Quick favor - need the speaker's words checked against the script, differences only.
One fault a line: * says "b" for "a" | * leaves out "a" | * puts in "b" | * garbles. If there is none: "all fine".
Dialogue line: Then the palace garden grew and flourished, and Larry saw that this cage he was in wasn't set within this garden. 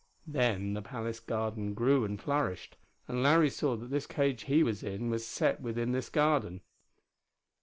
* says "was" for "wasn't"